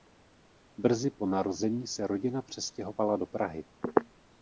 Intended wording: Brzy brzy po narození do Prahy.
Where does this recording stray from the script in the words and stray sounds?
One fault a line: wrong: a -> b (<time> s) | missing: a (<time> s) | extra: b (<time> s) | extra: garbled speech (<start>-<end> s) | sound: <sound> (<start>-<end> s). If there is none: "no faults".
missing: brzy (1.1 s)
extra: se rodina přestěhovala (1.9 s)